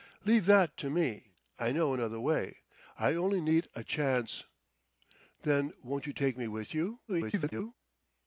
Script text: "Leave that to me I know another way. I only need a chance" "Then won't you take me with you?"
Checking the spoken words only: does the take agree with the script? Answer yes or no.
no